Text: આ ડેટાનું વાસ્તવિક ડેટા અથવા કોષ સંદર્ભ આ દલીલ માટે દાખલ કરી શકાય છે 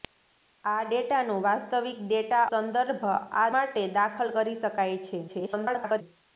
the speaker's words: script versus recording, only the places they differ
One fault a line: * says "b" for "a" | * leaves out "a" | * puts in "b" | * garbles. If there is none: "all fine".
* leaves out "અથવા કોષ"
* leaves out "દલીલ"
* garbles